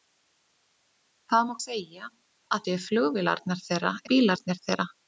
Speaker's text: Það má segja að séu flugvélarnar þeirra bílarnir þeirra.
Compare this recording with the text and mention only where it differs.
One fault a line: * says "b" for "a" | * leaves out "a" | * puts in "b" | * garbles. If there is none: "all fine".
all fine